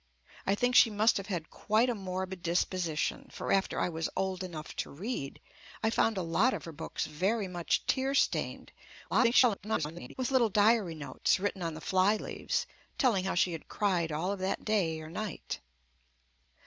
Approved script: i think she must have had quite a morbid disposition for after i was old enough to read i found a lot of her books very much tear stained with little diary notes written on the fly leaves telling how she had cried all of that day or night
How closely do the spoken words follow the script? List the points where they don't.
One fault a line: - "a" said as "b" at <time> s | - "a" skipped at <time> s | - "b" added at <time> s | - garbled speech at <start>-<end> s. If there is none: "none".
- garbled speech at 9.1-10.1 s